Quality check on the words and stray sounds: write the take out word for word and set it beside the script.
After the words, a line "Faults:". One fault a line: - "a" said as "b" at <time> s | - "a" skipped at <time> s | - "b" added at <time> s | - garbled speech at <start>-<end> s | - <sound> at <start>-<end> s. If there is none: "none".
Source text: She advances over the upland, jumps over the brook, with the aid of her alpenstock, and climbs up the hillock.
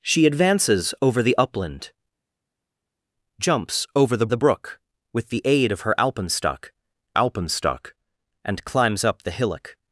She advances over the upland, jumps over the the brook, with the aid of her alpenstock alpenstock, and climbs up the hillock.
Faults:
- "the" added at 4.3 s
- "alpenstock" added at 7.1 s